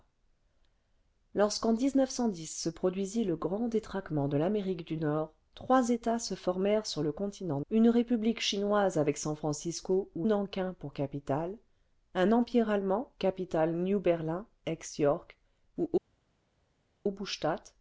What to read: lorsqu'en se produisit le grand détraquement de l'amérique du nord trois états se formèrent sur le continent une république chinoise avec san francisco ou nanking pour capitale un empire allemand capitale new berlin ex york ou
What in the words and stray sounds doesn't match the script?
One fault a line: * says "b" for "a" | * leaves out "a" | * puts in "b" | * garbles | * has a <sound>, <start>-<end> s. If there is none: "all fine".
all fine